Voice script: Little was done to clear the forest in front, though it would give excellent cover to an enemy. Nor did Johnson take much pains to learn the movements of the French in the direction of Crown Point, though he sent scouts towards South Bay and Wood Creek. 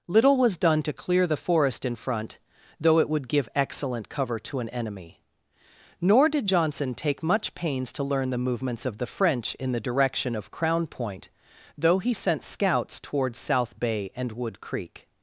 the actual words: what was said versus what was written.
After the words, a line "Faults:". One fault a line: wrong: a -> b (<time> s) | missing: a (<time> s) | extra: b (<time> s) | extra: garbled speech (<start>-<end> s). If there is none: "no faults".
Little was done to clear the forest in front, though it would give excellent cover to an enemy. Nor did Johnson take much pains to learn the movements of the French in the direction of Crown Point, though he sent scouts towards South Bay and Wood Creek.
Faults:
no faults